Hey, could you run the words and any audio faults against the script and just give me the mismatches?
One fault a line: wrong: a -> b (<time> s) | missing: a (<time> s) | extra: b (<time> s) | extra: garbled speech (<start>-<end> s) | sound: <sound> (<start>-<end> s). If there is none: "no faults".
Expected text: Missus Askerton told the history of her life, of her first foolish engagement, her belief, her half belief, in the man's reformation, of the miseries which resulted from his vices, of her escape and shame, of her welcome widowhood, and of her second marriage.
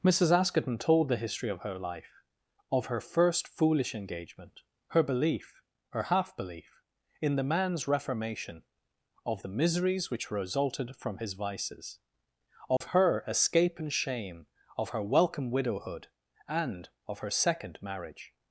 sound: dropout (12.8-12.8 s)